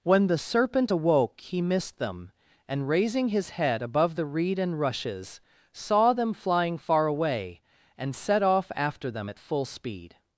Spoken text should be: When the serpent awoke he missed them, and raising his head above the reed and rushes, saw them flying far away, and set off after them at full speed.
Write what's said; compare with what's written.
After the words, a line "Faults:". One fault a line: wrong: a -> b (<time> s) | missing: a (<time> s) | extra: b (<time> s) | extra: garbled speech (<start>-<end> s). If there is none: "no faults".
When the serpent awoke he missed them, and raising his head above the reed and rushes, saw them flying far away, and set off after them at full speed.
Faults:
no faults